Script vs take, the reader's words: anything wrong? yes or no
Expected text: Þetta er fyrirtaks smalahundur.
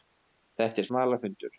yes